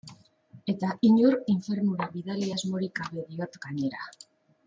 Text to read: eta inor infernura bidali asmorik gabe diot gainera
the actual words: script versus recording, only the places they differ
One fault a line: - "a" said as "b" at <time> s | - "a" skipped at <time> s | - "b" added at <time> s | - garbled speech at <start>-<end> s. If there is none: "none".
none